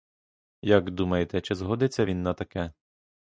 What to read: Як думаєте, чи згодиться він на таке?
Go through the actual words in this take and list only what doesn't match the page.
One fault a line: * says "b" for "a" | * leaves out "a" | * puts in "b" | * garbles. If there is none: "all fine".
all fine